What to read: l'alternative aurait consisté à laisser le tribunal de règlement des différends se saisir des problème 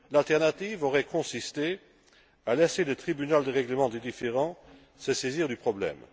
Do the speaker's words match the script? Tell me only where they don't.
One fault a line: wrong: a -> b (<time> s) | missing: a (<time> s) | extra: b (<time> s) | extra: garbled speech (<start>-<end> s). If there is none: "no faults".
wrong: des -> du (5.5 s)